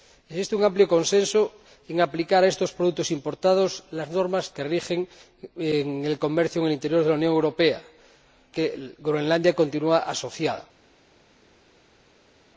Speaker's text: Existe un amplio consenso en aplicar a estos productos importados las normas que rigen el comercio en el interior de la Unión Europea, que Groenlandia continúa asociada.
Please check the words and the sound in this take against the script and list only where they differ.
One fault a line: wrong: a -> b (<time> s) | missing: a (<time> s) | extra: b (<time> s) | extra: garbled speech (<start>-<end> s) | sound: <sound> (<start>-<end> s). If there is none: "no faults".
no faults